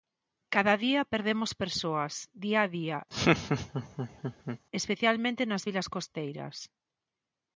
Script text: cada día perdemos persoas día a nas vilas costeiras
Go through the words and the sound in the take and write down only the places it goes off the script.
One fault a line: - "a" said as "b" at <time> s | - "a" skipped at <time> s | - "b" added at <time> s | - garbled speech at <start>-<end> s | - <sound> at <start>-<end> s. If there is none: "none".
- "día especialmente" added at 2.8 s
- laugh at 3.1-4.6 s